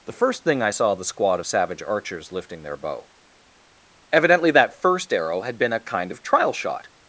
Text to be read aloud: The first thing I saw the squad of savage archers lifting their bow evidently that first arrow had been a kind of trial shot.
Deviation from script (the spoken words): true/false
false